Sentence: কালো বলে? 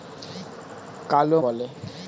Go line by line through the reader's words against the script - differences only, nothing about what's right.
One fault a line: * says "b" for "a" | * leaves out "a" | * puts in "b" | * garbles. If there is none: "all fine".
all fine